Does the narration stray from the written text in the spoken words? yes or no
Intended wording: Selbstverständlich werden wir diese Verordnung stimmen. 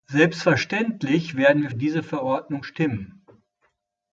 no